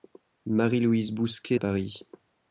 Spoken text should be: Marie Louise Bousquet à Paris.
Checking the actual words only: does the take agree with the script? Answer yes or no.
yes